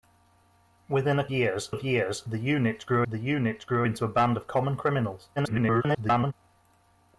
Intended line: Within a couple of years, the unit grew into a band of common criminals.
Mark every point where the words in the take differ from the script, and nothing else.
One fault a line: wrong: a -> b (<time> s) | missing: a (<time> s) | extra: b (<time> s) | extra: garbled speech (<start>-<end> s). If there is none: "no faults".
wrong: couple -> years (1.3 s)
extra: the unit grew (3.0 s)
extra: garbled speech (5.4-6.3 s)